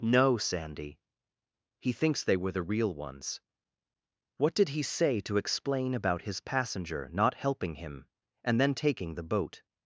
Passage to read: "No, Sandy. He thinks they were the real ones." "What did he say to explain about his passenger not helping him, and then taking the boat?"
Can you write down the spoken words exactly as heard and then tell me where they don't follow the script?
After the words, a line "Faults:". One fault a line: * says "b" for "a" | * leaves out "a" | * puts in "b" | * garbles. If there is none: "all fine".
"No, Sandy. He thinks they were the real ones." "What did he say to explain about his passenger not helping him, and then taking the boat?"
Faults:
all fine